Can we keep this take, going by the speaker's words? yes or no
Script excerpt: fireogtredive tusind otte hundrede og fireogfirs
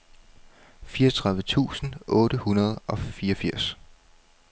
yes